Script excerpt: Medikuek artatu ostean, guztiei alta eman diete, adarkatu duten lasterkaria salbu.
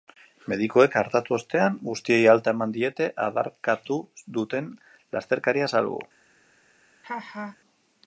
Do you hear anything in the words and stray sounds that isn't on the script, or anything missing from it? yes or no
yes